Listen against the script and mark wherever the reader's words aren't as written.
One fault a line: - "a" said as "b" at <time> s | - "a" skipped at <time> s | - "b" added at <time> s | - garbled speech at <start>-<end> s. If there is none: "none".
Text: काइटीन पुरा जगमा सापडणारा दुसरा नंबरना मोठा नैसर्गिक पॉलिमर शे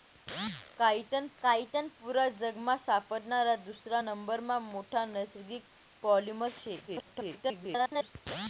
- "काइटीन" added at 1.4 s
- garbled speech at 6.9-8.1 s